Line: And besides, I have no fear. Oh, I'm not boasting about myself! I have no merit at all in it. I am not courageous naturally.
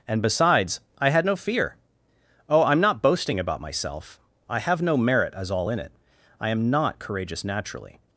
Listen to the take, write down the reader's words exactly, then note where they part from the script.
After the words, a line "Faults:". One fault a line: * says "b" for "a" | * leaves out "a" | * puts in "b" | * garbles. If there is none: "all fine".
And besides, I had no fear. Oh, I'm not boasting about myself! I have no merit as all in it. I am not courageous naturally.
Faults:
* says "had" for "have"
* says "as" for "at"